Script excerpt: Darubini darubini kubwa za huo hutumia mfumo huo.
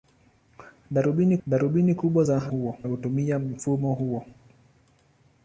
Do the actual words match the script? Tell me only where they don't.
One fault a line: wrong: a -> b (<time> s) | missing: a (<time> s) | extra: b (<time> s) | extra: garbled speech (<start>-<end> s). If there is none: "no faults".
no faults